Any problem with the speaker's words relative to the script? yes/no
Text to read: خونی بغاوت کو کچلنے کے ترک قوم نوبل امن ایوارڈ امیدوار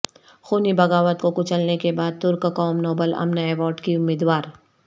yes